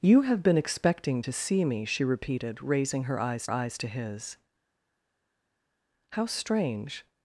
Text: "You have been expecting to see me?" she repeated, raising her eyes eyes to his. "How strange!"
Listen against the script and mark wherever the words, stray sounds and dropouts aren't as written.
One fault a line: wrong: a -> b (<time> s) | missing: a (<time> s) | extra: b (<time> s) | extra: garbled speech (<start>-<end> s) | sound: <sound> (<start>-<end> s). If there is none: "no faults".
no faults